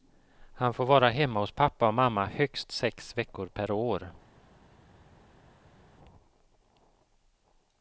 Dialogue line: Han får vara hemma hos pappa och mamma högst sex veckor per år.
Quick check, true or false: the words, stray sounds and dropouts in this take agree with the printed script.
true